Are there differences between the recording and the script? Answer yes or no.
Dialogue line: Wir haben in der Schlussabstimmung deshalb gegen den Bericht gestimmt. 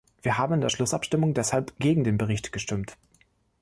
no